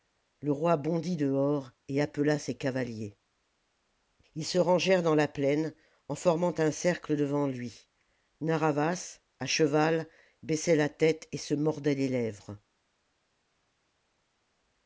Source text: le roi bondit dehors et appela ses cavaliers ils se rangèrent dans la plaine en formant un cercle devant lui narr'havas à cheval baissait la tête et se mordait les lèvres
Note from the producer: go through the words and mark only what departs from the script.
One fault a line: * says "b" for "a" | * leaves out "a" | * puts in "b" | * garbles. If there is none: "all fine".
all fine